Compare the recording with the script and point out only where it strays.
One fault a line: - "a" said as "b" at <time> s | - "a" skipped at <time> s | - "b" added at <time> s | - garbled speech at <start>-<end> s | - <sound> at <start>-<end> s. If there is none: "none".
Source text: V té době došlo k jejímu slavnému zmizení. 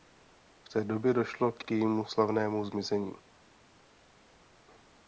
- "k" added at 1.6 s